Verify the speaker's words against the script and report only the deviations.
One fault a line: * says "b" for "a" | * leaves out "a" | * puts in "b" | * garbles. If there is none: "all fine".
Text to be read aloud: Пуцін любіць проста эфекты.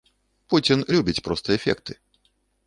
all fine